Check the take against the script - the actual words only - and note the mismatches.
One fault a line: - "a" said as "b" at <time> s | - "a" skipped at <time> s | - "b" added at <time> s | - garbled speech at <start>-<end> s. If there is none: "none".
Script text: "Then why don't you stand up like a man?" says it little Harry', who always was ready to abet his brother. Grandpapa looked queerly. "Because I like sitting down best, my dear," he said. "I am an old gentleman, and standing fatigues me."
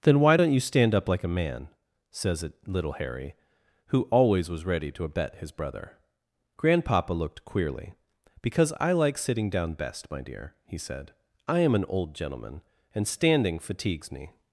none